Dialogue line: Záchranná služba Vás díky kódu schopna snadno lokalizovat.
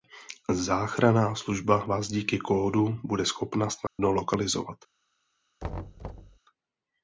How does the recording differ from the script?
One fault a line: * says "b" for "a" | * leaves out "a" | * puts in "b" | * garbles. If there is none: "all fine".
* puts in "bude"